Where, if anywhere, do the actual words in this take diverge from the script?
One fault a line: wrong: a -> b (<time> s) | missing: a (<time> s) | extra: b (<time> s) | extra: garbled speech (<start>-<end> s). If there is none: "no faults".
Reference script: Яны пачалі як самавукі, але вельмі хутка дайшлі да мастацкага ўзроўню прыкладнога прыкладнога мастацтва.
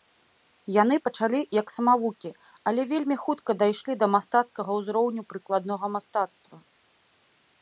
missing: прыкладнога (5.8 s)